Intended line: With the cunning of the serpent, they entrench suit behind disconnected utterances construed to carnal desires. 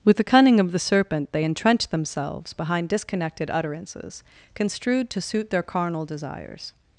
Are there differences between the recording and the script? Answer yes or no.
yes